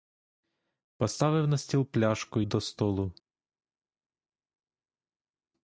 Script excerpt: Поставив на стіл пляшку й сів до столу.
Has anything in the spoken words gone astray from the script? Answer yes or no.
yes